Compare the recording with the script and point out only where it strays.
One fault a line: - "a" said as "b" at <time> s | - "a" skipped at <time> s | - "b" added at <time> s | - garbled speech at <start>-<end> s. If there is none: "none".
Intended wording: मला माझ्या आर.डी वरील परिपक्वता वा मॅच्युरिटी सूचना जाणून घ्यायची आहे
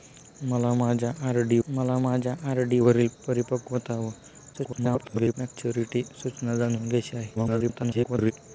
- "मला माझ्या आर.डी" added at 1.7 s
- garbled speech at 4.5-5.3 s
- garbled speech at 7.4-8.3 s